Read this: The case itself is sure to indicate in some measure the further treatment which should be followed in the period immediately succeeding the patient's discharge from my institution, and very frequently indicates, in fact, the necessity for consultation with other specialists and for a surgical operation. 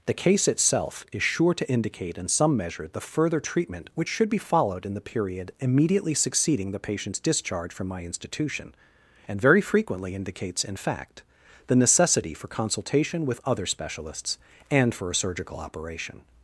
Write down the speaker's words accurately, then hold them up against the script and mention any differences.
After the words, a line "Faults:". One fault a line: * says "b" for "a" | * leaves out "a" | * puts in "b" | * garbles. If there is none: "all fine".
The case itself is sure to indicate in some measure the further treatment which should be followed in the period immediately succeeding the patient's discharge from my institution, and very frequently indicates, in fact, the necessity for consultation with other specialists and for a surgical operation.
Faults:
all fine